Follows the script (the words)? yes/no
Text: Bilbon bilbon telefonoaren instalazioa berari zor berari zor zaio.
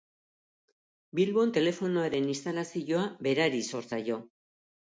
no